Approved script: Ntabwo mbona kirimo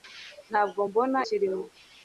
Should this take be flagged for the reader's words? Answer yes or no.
no